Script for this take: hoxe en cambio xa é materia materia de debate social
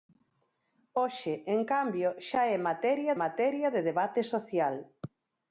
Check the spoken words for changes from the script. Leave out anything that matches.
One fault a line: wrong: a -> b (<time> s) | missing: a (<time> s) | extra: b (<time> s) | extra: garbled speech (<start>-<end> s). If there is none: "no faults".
no faults